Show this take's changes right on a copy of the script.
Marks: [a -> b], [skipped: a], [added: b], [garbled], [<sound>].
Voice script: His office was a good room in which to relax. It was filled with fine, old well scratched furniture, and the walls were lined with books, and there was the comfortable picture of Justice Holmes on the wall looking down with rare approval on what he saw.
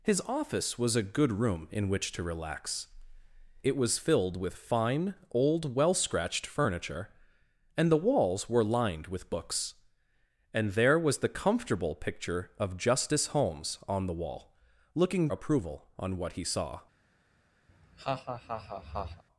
His office was a good room in which to relax. It was filled with fine, old well scratched furniture, and the walls were lined with books, and there was the comfortable picture of Justice Holmes on the wall looking [skipped: down with rare] approval on what he saw. [laugh]